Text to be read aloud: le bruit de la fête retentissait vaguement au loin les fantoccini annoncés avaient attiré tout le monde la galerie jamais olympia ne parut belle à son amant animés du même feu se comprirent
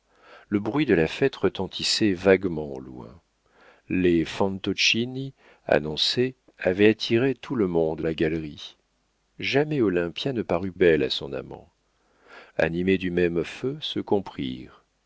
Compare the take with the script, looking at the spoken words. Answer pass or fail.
pass